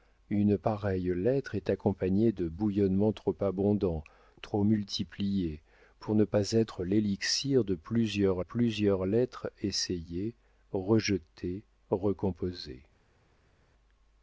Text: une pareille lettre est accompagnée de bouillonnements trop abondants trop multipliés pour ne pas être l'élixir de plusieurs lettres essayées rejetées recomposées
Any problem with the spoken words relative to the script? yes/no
yes